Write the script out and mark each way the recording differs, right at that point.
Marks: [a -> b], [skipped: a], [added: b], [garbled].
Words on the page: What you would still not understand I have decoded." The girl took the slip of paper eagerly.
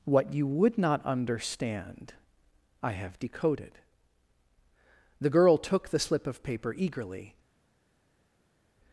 What you would [skipped: still] not understand I have decoded." The girl took the slip of paper eagerly.